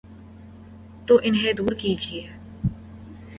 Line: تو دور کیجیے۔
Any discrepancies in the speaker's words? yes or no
yes